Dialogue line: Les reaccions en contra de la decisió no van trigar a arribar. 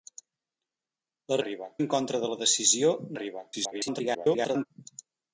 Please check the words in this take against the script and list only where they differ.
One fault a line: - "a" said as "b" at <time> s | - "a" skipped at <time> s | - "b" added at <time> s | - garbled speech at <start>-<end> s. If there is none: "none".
- "reaccions" said as "arribar" at 1.4 s
- "no van trigar" skipped at 2.9 s
- garbled speech at 3.5-4.7 s